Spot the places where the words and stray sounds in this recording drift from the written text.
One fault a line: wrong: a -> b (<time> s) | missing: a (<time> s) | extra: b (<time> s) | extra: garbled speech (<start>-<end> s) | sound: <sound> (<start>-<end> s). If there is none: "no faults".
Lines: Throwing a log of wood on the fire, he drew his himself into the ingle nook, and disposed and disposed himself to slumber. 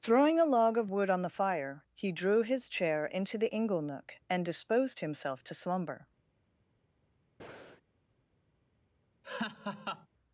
wrong: himself -> chair (2.7 s)
missing: and disposed (5.0 s)
sound: breath (7.4-7.8 s)
sound: laugh (9.2-10.1 s)